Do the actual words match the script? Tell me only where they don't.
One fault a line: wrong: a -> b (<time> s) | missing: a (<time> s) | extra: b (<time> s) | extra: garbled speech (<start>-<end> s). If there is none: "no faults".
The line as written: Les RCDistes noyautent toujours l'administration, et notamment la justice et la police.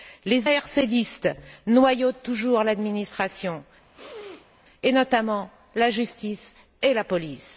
no faults